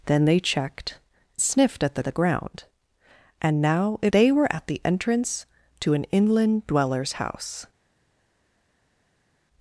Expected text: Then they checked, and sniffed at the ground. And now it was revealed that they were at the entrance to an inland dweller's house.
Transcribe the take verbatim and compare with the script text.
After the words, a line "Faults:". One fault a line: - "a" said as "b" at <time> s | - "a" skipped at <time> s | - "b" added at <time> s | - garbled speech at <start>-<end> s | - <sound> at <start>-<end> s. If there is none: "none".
Then they checked, sniffed at the the ground. And now it they were at the entrance to an inland dweller's house.
Faults:
- "and" skipped at 1.0 s
- "the" added at 2.0 s
- "was revealed that" skipped at 4.1 s